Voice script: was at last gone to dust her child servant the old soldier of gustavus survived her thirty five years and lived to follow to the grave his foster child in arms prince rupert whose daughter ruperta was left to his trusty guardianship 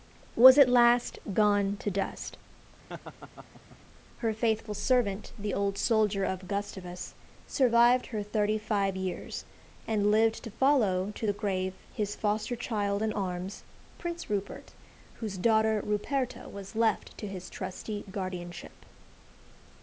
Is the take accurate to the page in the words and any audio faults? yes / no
no